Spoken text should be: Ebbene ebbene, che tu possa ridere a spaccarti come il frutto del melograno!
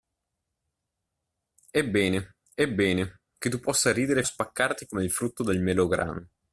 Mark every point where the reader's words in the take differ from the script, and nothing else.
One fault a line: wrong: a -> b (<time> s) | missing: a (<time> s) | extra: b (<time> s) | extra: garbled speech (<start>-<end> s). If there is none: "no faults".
no faults